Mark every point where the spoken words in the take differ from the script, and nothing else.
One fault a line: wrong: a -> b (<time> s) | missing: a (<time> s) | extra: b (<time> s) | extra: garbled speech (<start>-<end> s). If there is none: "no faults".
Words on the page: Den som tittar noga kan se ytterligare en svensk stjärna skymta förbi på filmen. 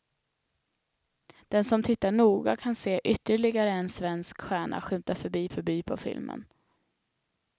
extra: förbi (5.5 s)